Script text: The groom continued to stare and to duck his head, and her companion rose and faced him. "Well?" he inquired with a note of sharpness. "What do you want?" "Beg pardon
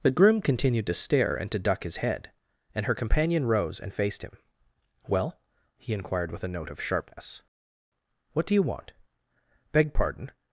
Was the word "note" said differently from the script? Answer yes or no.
no